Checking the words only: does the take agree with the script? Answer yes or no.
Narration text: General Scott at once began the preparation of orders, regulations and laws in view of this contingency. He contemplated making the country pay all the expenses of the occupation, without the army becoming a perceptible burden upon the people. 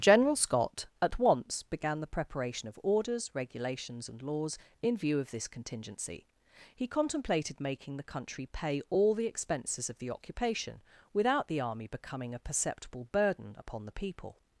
yes